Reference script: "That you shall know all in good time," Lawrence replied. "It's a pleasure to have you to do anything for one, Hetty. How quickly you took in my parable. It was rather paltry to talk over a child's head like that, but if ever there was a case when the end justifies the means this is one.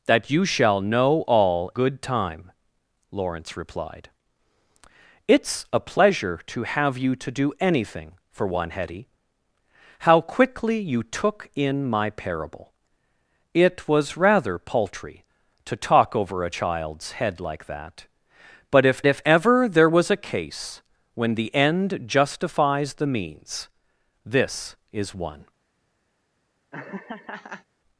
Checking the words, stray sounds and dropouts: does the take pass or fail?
fail